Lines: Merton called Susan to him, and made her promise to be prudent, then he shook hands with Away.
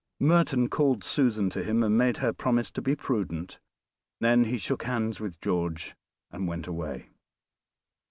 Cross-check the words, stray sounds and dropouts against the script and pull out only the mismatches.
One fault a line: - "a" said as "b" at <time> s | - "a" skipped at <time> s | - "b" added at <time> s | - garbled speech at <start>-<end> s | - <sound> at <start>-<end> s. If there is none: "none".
- "George and went" added at 5.4 s